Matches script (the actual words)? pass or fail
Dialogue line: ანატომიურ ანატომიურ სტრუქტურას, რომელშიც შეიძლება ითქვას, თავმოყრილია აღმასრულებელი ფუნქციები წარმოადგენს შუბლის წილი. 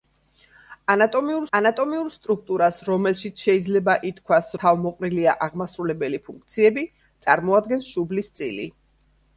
pass